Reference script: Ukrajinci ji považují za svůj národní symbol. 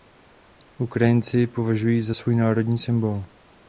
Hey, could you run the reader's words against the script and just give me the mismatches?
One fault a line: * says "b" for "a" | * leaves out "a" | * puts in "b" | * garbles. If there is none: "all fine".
all fine